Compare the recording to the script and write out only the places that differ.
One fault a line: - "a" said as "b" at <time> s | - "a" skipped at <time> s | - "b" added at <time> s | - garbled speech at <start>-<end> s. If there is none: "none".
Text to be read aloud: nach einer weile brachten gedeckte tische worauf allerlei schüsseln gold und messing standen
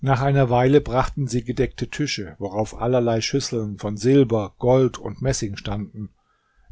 - "sie" added at 1.3 s
- "von silber" added at 3.8 s